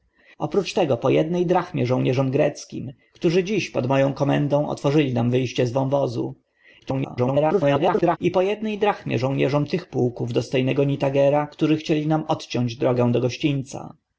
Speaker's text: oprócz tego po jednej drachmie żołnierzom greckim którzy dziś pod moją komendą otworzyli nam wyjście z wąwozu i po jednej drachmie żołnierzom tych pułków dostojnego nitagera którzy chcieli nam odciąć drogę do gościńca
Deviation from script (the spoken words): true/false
true